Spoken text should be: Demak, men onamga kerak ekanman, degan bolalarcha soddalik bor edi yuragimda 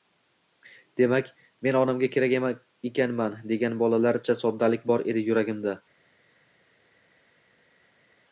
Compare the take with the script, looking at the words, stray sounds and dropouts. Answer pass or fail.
pass